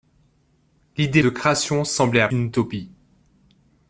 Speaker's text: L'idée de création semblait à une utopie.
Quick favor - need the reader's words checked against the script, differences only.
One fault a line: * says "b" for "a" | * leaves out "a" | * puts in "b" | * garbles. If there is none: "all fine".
all fine